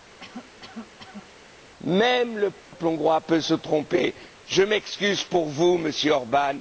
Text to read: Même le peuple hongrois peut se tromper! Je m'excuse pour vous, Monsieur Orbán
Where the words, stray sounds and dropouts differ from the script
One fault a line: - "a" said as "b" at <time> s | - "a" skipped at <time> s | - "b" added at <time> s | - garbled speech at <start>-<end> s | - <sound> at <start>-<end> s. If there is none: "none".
- cough at 0.2-1.3 s
- dropout at 2.6-2.7 s